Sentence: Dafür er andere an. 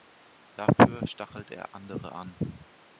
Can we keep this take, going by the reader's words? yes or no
no